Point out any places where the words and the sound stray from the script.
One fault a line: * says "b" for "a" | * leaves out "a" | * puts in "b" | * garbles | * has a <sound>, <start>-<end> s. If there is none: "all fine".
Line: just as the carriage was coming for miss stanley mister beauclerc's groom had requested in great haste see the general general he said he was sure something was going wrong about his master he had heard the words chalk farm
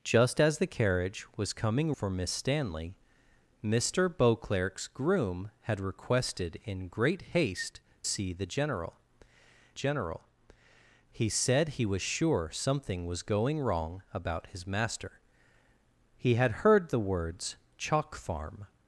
all fine